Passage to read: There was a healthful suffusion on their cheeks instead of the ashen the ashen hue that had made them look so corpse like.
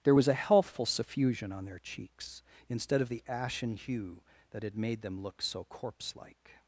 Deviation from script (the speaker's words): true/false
true